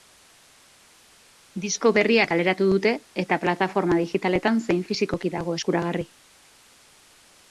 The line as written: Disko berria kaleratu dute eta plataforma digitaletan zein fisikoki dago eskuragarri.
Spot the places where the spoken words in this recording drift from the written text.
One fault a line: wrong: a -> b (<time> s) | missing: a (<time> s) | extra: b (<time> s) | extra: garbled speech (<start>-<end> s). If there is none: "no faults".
no faults